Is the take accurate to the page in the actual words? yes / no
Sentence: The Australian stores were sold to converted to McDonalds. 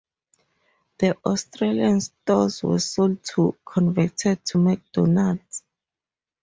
yes